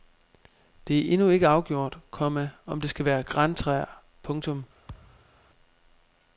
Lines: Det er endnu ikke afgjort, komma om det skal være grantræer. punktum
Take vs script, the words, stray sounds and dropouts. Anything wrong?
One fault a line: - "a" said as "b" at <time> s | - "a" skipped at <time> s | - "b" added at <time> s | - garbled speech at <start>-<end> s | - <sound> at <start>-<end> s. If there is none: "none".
- thud at 4.9-5.4 s